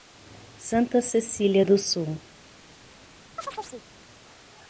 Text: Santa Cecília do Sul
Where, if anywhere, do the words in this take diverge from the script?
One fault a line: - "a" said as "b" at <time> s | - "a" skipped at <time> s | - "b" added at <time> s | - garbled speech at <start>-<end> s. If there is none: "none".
none